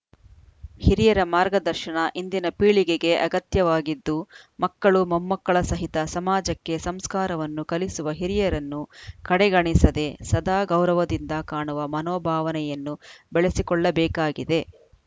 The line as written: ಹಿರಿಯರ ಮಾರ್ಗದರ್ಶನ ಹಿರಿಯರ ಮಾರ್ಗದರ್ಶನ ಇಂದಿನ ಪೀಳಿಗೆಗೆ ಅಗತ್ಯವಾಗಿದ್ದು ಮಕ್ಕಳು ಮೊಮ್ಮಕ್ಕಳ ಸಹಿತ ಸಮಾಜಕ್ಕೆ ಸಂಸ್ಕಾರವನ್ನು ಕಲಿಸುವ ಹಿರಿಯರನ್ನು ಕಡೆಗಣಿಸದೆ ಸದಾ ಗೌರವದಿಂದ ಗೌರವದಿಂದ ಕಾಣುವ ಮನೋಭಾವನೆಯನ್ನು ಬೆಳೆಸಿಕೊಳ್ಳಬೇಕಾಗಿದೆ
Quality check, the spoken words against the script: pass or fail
fail